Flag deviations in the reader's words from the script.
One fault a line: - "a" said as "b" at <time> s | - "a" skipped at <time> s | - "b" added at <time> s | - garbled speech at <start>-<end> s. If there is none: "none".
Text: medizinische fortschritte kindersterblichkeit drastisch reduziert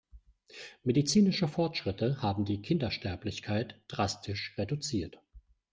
- "haben die" added at 2.2 s